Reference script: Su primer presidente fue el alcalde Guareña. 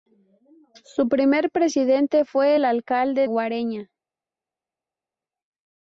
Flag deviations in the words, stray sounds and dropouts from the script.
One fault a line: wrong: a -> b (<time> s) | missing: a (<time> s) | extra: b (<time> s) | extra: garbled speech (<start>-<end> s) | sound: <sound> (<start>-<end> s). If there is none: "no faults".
no faults